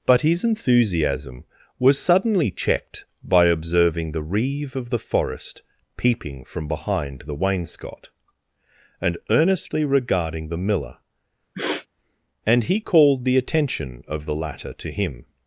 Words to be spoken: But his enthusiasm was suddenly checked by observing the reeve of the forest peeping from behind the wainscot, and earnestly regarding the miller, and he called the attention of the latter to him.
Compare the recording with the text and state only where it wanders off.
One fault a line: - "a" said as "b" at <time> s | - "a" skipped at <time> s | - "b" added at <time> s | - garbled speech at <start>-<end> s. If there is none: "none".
none